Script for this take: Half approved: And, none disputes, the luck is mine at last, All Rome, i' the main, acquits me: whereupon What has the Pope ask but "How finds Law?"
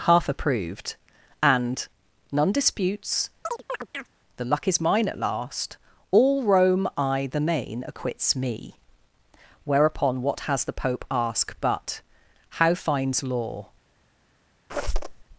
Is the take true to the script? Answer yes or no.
yes